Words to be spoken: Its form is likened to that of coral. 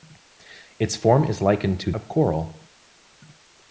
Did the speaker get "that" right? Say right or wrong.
wrong